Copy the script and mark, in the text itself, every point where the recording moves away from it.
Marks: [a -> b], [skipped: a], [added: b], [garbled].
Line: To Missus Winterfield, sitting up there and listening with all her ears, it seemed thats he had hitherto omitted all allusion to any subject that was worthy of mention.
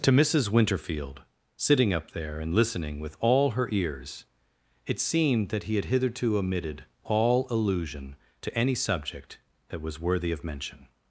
To Missus Winterfield, sitting up there and listening with all her ears, it seemed [thats -> that] he had hitherto omitted all allusion to any subject that was worthy of mention.